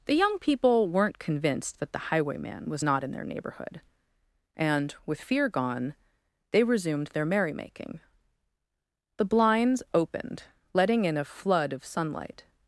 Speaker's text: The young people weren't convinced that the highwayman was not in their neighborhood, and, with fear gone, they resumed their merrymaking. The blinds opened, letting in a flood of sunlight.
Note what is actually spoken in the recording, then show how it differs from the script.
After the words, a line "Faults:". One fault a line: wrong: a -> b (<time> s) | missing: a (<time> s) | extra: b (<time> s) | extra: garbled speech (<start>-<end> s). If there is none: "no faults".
The young people weren't convinced that the highwayman was not in their neighborhood, and, with fear gone, they resumed their merrymaking. The blinds opened, letting in a flood of sunlight.
Faults:
no faults